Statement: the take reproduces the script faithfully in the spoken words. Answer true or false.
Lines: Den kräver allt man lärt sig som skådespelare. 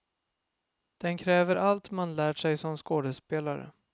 true